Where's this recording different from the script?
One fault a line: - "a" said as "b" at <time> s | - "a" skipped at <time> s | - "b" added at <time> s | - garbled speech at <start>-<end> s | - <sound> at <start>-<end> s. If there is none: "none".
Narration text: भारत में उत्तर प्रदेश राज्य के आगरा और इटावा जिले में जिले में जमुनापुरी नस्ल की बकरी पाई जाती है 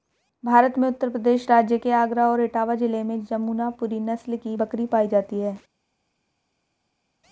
- "जिले में" skipped at 3.2 s